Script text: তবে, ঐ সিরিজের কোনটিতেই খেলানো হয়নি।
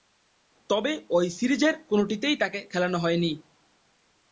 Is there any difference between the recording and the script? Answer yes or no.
yes